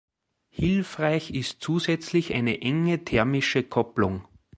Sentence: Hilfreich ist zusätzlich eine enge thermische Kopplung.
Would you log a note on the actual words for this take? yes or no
no